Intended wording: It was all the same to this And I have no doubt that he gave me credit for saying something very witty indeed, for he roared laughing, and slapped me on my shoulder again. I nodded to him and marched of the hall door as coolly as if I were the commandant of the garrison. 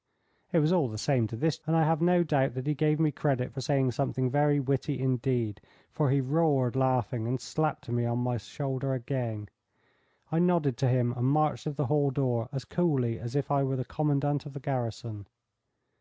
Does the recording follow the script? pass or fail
pass